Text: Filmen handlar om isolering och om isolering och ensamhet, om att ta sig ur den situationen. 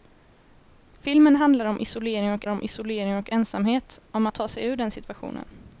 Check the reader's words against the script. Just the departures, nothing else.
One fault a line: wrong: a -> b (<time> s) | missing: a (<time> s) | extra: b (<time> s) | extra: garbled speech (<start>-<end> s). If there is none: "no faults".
no faults